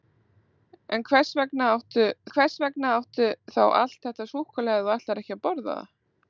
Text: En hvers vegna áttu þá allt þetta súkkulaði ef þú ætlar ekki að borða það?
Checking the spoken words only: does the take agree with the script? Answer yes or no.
no